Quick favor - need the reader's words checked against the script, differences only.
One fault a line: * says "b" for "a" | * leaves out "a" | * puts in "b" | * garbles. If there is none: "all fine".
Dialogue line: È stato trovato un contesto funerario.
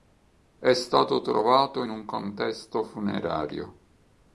all fine